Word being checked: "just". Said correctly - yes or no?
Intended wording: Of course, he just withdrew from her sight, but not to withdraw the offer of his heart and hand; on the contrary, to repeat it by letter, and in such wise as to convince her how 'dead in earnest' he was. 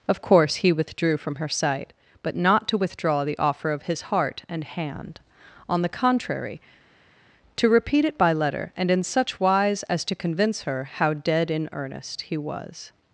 no